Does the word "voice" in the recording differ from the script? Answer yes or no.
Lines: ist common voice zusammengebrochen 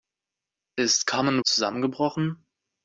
yes